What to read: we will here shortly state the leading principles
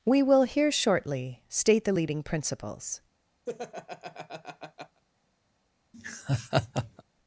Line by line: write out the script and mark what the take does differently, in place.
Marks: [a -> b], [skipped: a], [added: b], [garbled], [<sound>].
we will here shortly state the leading principles [laugh] [laugh]